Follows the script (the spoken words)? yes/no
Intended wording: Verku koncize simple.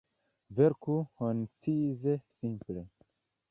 yes